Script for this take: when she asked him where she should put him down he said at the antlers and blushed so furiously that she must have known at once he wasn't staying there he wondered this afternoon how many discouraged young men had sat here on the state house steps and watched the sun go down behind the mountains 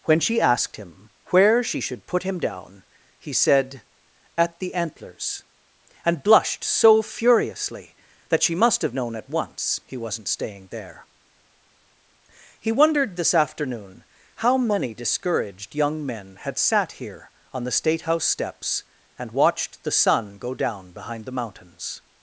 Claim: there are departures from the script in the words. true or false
false